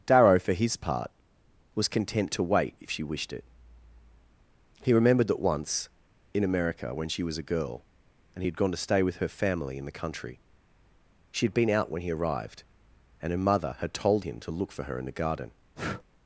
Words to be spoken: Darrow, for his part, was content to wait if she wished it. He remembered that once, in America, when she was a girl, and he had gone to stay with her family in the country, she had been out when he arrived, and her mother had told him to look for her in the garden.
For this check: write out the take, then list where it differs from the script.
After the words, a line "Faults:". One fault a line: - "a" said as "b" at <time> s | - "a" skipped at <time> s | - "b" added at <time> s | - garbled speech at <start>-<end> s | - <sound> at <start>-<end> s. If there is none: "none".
Darrow, for his part, was content to wait if she wished it. He remembered that once, in America, when she was a girl, and he had gone to stay with her family in the country, she had been out when he arrived, and her mother had told him to look for her in the garden.
Faults:
- breath at 15.8-16.0 s